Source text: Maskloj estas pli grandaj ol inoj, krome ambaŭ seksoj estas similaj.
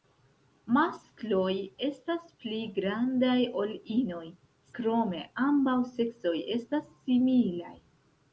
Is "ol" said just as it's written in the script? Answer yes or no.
yes